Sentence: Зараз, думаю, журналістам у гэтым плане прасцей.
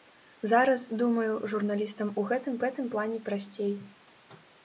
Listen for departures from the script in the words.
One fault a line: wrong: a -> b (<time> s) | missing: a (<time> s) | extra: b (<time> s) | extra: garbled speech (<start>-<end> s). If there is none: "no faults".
extra: гэтым (2.6 s)